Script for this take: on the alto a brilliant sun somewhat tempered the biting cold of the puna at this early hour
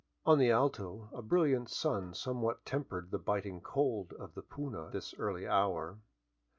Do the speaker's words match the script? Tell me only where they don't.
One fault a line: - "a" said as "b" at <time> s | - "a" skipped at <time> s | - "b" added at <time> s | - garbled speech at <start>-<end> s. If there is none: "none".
- "at" skipped at 4.9 s